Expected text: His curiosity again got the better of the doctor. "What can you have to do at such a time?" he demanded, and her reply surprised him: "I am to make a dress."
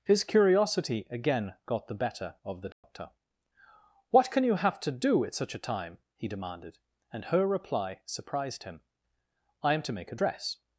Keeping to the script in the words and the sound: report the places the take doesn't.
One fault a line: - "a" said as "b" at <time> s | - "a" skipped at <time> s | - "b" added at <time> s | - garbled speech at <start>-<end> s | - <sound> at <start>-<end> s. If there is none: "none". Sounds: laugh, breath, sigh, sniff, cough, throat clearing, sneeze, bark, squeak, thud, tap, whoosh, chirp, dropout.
- dropout at 2.7-2.8 s